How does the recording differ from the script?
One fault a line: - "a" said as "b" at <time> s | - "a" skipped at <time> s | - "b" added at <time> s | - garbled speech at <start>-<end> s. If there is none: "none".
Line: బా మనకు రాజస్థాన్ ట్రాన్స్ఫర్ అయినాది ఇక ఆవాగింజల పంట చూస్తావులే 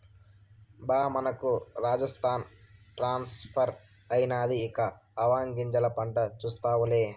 none